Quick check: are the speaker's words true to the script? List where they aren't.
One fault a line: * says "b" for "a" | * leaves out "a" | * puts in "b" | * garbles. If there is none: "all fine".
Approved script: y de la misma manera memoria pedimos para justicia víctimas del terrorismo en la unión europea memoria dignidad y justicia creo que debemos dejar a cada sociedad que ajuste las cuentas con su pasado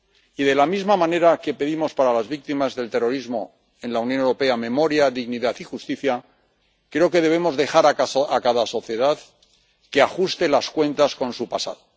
* says "que" for "memoria"
* says "las" for "justicia"